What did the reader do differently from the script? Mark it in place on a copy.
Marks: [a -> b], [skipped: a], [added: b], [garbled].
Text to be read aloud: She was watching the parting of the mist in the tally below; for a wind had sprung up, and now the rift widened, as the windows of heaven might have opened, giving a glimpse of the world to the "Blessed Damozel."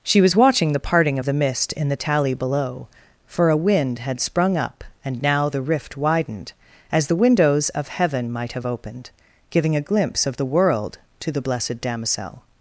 She was watching the parting of the mist in the tally below; for a wind had sprung up, and now the rift widened, as the windows of heaven might have opened, giving a glimpse of the world to the "Blessed Damozel."